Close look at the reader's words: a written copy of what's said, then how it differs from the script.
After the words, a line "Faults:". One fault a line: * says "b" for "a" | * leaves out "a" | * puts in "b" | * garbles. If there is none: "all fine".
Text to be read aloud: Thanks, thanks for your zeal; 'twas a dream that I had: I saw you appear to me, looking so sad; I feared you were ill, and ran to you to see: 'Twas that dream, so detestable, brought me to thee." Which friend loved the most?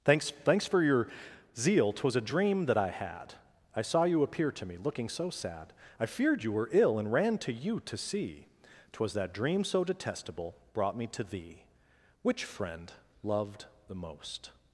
Thanks, thanks for your zeal; 'twas a dream that I had: I saw you appear to me, looking so sad; I feared you were ill, and ran to you to see: 'Twas that dream, so detestable, brought me to thee." Which friend loved the most?
Faults:
all fine